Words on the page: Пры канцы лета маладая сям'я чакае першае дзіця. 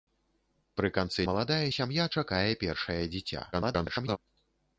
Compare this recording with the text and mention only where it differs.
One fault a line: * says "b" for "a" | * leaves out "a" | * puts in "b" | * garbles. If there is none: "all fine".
* leaves out "лета"
* garbles